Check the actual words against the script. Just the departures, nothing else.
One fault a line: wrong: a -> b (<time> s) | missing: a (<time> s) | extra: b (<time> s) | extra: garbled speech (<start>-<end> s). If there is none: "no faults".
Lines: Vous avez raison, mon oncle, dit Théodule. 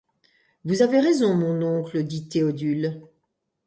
no faults